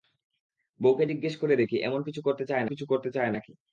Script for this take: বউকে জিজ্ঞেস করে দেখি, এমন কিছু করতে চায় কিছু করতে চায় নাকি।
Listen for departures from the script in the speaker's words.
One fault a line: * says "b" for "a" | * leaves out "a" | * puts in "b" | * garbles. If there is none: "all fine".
all fine